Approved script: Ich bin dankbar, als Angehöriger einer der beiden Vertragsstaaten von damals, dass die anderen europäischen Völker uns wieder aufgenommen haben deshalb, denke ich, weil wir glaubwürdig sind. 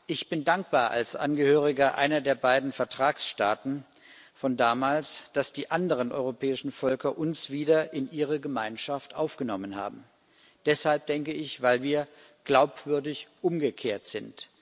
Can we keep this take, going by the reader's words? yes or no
no